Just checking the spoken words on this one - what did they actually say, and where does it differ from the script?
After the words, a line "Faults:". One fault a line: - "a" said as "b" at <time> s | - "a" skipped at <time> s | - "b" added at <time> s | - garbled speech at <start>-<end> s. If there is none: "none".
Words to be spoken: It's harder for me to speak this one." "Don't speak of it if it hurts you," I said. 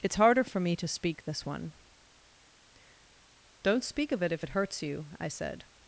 It's harder for me to speak this one." "Don't speak of it if it hurts you," I said.
Faults:
none